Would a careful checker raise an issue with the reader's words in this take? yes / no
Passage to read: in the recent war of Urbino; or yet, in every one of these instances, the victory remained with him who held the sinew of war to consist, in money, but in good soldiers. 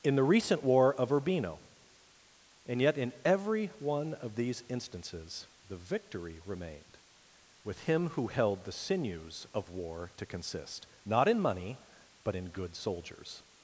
yes